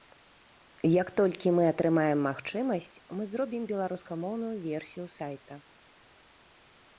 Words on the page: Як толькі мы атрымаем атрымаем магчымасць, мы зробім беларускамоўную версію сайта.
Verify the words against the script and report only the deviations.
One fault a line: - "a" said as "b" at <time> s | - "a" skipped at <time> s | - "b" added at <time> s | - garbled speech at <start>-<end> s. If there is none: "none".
- "атрымаем" skipped at 2.2 s